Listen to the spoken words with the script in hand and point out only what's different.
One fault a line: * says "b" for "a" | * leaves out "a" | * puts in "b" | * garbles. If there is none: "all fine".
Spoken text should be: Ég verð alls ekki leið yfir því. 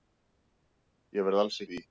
* leaves out "ekki leið yfir"